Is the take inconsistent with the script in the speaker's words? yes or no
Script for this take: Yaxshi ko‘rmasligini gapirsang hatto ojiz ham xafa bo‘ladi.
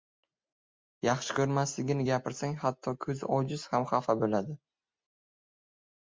yes